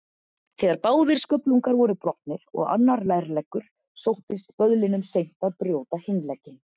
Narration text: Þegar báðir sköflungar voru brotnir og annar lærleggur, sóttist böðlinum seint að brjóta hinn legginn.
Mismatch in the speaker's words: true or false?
false